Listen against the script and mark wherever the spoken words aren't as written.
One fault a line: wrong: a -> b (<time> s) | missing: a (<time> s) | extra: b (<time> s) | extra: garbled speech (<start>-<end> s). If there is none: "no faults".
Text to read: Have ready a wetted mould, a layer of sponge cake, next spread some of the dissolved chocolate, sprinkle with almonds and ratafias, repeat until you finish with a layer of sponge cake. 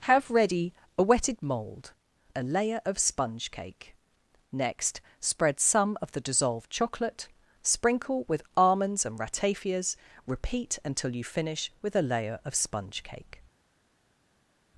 no faults